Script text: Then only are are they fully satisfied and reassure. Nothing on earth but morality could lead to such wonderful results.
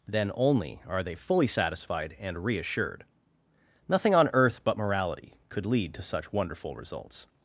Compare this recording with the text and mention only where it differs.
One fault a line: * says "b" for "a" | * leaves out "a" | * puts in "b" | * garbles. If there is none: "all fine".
* leaves out "are"
* says "reassured" for "reassure"